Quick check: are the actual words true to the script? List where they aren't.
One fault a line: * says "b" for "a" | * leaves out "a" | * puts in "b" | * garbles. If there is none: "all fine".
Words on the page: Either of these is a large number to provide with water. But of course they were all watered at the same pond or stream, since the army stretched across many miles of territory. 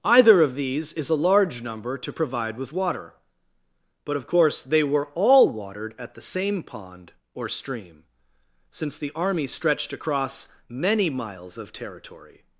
all fine